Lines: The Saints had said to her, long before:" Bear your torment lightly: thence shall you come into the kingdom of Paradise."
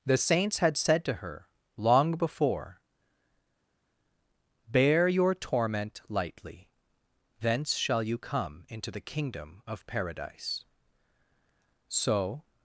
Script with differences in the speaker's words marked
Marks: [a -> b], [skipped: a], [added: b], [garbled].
The Saints had said to her, long before:" Bear your torment lightly: thence shall you come into the kingdom of Paradise." [added: So]